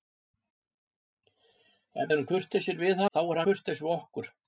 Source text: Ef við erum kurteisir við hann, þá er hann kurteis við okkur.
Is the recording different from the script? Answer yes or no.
yes